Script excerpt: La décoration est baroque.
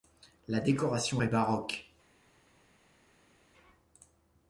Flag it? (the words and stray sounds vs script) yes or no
no